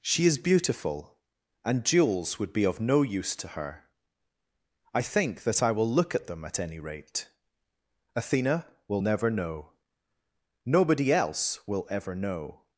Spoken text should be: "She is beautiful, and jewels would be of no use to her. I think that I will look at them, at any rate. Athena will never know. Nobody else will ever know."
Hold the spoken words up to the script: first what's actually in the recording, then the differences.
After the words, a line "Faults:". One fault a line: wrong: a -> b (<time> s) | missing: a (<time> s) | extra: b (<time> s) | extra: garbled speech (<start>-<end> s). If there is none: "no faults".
"She is beautiful, and jewels would be of no use to her. I think that I will look at them, at any rate. Athena will never know. Nobody else will ever know."
Faults:
no faults